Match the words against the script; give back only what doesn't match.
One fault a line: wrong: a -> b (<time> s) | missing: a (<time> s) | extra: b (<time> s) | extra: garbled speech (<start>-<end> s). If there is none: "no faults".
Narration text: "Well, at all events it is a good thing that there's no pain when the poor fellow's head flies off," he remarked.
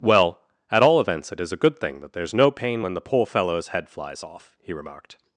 no faults